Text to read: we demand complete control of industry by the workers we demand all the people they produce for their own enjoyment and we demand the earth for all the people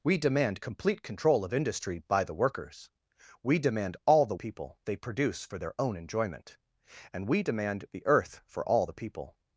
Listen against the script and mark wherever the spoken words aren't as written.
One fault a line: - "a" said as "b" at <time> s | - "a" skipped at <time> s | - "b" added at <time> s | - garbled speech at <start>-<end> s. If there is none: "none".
none